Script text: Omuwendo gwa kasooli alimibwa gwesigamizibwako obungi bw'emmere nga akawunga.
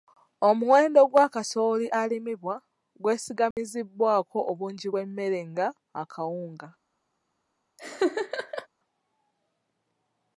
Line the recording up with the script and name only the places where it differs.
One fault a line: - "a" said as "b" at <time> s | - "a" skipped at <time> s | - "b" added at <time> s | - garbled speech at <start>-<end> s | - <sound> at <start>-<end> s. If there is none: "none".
- dropout at 3.5-3.6 s
- laugh at 7.8-8.7 s